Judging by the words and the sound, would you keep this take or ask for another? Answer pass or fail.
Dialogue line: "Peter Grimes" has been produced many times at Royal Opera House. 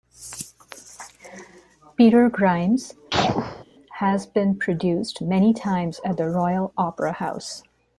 fail